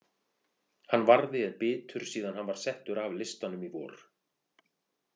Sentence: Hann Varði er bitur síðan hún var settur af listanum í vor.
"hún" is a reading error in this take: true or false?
true